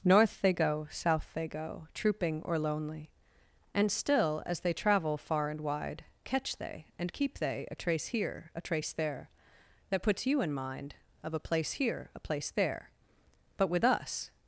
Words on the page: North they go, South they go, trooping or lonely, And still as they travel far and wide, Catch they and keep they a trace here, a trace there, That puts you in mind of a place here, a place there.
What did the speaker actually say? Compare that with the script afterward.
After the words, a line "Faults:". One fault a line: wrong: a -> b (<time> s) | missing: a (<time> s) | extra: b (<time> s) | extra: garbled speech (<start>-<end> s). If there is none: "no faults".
North they go, South they go, trooping or lonely, And still as they travel far and wide, Catch they and keep they a trace here, a trace there, That puts you in mind of a place here, a place there. But with us
Faults:
extra: But with us (13.6 s)